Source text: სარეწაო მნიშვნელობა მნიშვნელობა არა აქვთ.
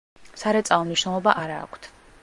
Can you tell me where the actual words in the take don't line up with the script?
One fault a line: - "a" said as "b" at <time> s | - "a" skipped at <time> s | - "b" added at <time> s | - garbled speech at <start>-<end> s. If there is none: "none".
- "მნიშვნელობა" skipped at 1.4 s